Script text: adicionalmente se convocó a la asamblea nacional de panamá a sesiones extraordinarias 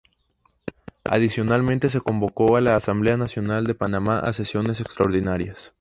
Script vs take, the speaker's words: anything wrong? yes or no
no